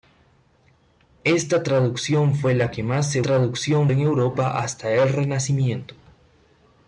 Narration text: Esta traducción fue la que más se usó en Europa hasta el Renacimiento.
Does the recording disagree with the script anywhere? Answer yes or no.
yes